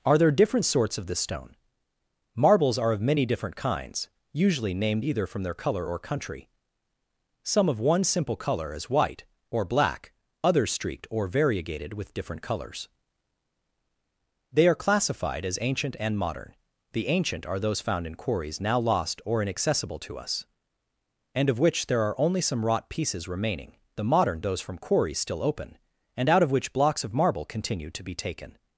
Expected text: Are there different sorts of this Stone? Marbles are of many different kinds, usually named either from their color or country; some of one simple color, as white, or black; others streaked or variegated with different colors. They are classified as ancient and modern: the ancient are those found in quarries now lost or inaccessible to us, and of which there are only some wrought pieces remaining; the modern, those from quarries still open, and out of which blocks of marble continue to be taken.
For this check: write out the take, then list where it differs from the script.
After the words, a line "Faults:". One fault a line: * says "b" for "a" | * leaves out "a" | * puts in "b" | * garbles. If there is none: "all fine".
Are there different sorts of this Stone? Marbles are of many different kinds, usually named either from their color or country; some of one simple color, as white, or black; others streaked or variegated with different colors. They are classified as ancient and modern: the ancient are those found in quarries now lost or inaccessible to us, and of which there are only some wrought pieces remaining; the modern, those from quarries still open, and out of which blocks of marble continue to be taken.
Faults:
all fine